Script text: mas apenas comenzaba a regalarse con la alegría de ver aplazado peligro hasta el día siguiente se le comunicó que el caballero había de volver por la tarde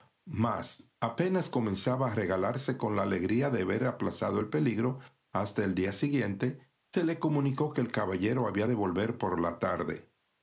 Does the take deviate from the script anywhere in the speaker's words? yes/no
yes